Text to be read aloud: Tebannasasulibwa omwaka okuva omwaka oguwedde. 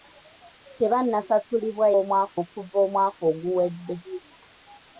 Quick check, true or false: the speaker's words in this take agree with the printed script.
true